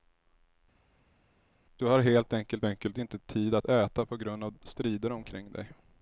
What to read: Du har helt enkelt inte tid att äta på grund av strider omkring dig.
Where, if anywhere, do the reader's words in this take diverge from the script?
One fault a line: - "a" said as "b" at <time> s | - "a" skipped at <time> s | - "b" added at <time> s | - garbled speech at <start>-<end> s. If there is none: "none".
- "enkelt" added at 2.6 s